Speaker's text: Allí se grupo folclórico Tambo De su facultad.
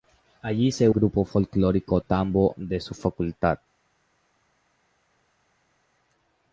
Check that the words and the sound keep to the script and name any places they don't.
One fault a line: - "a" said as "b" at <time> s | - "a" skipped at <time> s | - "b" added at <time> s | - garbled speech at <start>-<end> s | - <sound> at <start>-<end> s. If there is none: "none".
none